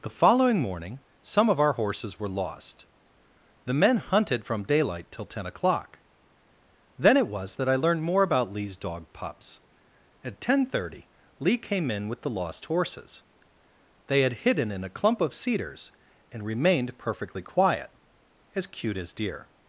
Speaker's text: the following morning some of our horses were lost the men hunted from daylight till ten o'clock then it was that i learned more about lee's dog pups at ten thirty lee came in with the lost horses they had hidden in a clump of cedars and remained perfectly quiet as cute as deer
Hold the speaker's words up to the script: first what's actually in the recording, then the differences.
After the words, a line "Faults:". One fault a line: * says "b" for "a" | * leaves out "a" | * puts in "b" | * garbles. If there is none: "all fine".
the following morning some of our horses were lost the men hunted from daylight till ten o'clock then it was that i learned more about lee's dog pups at ten thirty lee came in with the lost horses they had hidden in a clump of cedars and remained perfectly quiet as cute as deer
Faults:
all fine